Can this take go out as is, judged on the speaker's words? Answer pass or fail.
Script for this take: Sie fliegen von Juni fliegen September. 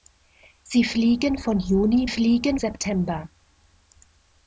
pass